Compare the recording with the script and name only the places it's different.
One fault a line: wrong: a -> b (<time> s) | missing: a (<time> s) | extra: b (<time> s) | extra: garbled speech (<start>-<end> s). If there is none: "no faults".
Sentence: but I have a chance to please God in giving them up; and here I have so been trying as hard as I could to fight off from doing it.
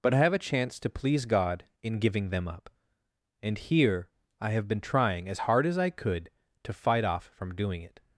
missing: so (4.7 s)